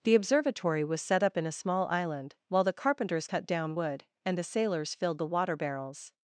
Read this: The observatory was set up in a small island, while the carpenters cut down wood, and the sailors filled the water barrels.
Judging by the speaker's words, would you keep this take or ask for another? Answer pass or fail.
pass